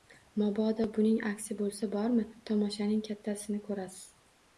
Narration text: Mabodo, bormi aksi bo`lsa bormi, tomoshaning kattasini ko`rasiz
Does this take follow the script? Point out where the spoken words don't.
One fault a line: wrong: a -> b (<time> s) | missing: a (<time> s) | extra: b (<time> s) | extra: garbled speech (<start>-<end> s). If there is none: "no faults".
wrong: bormi -> buning (0.9 s)